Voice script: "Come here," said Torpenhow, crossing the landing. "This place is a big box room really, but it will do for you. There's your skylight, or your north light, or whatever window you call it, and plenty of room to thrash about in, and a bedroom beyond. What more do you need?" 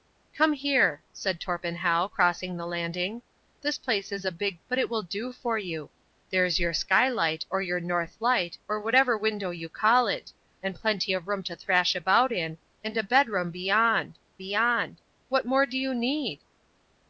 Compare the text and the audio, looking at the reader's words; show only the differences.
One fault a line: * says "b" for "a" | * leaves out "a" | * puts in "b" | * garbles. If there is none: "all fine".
* leaves out "box room really"
* puts in "beyond"